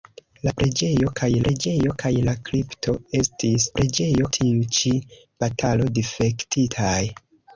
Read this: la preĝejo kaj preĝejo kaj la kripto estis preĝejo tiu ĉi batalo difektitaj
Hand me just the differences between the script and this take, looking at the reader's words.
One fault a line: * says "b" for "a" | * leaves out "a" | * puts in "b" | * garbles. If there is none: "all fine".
all fine